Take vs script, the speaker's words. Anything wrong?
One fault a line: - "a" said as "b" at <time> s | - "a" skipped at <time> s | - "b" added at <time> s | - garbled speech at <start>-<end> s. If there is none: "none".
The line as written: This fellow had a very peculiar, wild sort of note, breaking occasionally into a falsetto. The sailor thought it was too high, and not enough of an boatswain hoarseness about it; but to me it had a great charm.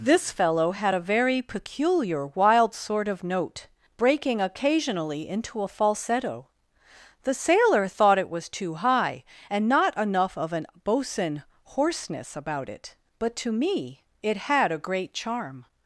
none